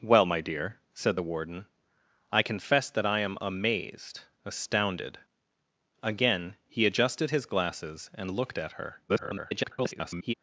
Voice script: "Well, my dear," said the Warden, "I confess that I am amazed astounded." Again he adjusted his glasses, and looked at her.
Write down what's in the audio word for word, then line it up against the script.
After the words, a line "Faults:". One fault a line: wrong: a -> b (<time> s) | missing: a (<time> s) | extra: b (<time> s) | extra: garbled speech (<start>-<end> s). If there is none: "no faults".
"Well, my dear," said the Warden, "I confess that I am amazed astounded." Again he adjusted his glasses, and looked at her. [garbled]
Faults:
extra: garbled speech (9.1-10.3 s)